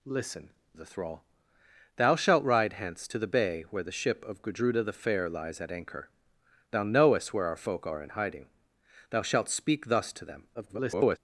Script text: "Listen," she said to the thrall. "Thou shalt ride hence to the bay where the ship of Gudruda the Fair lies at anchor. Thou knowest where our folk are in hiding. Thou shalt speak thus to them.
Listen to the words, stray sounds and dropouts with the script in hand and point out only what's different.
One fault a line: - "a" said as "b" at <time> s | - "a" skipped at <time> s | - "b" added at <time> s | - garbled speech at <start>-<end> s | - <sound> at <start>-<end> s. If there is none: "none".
- "she said to" skipped at 0.5 s
- garbled speech at 10.5-11.2 s